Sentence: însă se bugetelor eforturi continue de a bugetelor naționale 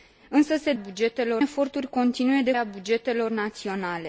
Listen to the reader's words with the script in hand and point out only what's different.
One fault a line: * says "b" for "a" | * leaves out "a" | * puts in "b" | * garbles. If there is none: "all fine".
all fine